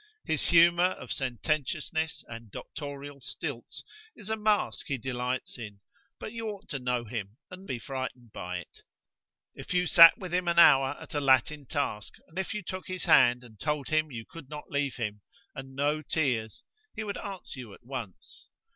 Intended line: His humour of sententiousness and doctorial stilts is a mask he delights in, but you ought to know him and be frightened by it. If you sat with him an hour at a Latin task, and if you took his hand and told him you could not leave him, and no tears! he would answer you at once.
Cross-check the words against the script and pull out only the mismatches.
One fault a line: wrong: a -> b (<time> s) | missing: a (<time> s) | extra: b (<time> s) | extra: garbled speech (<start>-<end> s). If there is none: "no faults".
no faults